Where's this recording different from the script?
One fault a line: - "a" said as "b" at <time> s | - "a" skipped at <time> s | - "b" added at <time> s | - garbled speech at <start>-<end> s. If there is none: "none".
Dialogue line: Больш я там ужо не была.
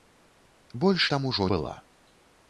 - "я" skipped at 1.1 s
- "не" skipped at 1.5 s